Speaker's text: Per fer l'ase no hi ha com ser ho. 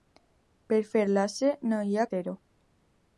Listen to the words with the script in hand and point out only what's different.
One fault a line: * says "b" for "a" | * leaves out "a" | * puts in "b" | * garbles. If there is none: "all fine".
* leaves out "com"